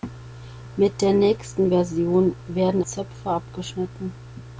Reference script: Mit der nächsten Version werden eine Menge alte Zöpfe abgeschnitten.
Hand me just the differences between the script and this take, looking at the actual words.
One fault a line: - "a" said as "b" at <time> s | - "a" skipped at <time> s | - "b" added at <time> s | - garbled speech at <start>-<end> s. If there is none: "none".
- "eine Menge alte" skipped at 2.8 s